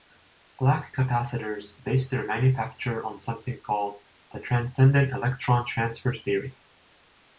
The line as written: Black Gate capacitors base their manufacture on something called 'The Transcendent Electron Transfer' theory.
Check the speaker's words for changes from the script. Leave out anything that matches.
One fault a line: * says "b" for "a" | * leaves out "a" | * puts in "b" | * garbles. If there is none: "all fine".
* leaves out "Gate"